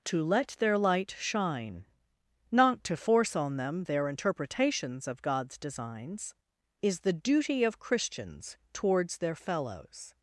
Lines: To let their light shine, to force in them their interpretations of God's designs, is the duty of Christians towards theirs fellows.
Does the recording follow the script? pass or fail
fail